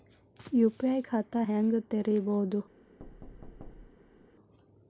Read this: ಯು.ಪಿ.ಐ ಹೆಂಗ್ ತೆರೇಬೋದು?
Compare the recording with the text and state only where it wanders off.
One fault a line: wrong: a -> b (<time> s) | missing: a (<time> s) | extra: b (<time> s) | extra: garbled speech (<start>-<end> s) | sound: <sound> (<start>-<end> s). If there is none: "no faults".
extra: ಖಾತಾ (1.0 s)
sound: thud (3.0-4.3 s)